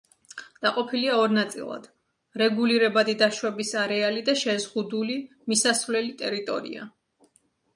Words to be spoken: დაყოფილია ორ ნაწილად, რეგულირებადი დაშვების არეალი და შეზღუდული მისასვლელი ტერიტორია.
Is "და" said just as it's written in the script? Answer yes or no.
yes